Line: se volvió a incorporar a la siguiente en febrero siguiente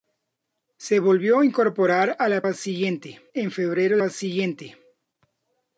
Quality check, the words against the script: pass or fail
pass